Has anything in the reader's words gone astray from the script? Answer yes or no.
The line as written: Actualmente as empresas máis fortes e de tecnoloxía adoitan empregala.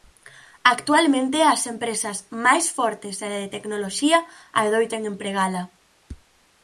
no